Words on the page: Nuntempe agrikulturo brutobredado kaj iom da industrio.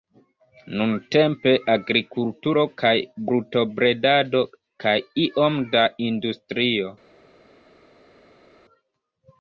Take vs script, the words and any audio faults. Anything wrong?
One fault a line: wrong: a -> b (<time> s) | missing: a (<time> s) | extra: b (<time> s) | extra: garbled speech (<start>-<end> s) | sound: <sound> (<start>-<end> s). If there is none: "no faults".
extra: kaj (2.8 s)